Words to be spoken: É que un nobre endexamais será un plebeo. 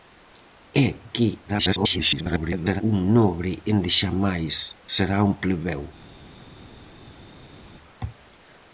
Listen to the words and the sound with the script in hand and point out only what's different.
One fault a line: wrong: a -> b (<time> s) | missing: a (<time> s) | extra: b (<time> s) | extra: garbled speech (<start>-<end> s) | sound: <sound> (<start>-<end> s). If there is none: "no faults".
extra: garbled speech (1.5-2.8 s)